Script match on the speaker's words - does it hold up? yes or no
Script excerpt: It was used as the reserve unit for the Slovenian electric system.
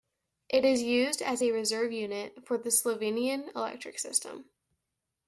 no